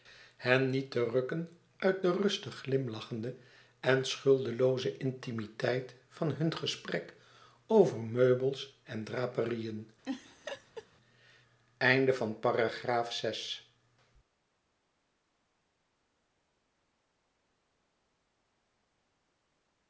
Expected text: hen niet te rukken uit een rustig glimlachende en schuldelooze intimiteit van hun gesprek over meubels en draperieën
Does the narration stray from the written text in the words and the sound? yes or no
yes